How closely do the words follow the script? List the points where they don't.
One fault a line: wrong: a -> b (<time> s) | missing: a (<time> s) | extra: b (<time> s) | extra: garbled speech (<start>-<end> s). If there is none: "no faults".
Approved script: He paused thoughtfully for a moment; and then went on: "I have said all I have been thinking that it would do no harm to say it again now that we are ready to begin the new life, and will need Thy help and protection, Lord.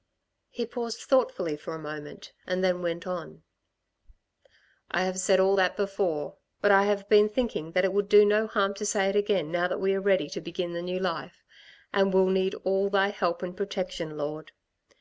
extra: that before but (5.5 s)
extra: all (12.6 s)